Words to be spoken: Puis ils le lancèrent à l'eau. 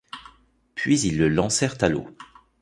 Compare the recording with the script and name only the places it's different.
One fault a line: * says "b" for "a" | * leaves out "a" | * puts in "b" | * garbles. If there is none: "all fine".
all fine